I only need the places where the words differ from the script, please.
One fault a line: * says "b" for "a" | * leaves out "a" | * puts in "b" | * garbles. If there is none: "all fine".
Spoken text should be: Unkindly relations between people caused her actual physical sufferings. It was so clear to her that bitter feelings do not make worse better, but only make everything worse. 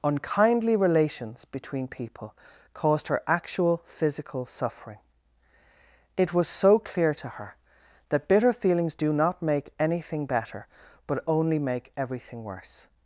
* says "suffering" for "sufferings"
* says "anything" for "worse"